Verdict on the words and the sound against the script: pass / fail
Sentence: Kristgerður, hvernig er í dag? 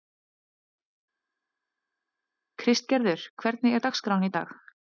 fail